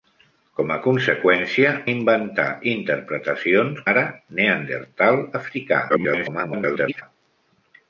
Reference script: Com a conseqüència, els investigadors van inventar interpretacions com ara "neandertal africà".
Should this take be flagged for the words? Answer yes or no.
yes